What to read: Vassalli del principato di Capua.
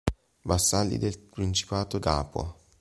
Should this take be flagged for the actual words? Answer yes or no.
yes